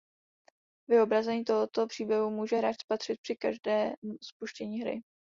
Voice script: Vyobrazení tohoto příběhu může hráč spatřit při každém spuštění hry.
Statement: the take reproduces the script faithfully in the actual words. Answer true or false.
true